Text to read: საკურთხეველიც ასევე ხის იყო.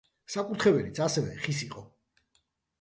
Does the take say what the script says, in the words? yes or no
yes